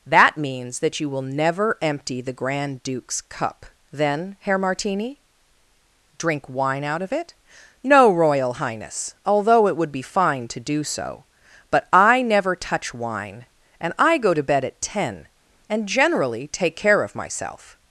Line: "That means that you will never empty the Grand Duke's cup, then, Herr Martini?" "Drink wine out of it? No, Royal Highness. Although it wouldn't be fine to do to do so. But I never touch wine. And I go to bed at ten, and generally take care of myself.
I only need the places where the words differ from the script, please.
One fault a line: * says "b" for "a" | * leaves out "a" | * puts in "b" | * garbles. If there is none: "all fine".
* says "would" for "wouldn't"
* leaves out "to do"